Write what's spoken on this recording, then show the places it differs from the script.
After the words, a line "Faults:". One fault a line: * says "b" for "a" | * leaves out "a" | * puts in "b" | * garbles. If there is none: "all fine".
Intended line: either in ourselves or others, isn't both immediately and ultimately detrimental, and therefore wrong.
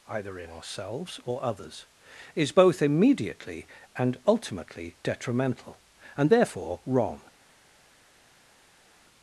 either in ourselves or others, is both immediately and ultimately detrimental, and therefore wrong.
Faults:
* says "is" for "isn't"